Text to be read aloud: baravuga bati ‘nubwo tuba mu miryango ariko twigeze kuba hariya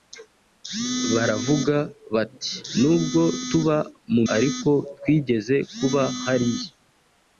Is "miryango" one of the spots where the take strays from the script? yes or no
yes